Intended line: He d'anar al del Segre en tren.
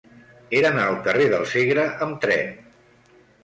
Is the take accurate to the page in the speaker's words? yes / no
no